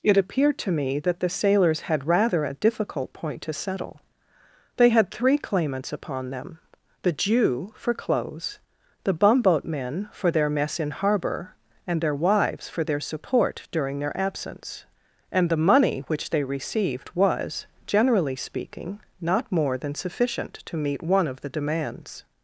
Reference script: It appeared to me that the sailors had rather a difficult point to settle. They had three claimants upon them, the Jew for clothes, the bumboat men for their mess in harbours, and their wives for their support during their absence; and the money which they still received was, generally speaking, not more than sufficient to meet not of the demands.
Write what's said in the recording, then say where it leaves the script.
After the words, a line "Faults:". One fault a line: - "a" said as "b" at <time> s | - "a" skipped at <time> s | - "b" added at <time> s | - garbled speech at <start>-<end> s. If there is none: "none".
It appeared to me that the sailors had rather a difficult point to settle. They had three claimants upon them, the Jew for clothes, the bumboat men for their mess in harbour, and their wives for their support during their absence; and the money which they received was, generally speaking, not more than sufficient to meet one of the demands.
Faults:
- "harbours" said as "harbour" at 10.9 s
- "still" skipped at 16.4 s
- "not" said as "one" at 21.0 s